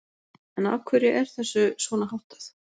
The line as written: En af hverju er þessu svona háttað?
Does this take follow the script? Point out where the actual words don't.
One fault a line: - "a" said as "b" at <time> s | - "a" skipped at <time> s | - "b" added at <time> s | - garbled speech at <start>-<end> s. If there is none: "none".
none